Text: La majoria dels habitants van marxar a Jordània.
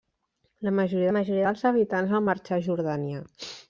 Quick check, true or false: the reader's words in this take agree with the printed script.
false